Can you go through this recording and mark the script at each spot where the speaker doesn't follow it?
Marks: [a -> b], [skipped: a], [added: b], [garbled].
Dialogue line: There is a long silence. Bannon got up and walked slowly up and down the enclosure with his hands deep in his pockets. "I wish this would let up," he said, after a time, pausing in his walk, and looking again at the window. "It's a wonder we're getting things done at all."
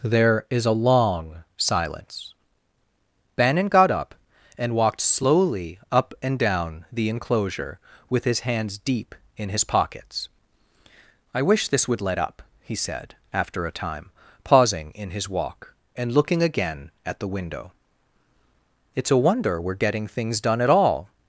There is a long silence. Bannon got up and walked slowly up and down the enclosure with his hands deep in his pockets. "I wish this would let up," he said, after a time, pausing in his walk, and looking again at the window. "It's a wonder we're getting things done at all."